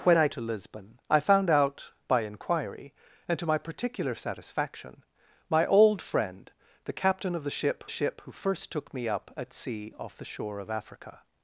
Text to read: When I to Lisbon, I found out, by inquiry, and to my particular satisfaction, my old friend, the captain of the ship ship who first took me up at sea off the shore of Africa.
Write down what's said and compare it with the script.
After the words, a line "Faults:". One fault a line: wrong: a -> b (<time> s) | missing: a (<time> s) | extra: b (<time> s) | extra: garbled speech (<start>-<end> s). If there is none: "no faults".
When I to Lisbon, I found out, by inquiry, and to my particular satisfaction, my old friend, the captain of the ship ship who first took me up at sea off the shore of Africa.
Faults:
no faults